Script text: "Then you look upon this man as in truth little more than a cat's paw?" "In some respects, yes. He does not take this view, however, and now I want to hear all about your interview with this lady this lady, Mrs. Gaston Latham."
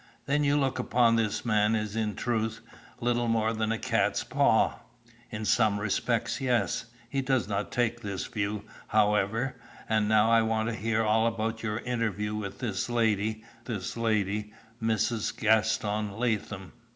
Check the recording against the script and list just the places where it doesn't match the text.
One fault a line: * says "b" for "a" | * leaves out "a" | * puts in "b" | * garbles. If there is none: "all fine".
all fine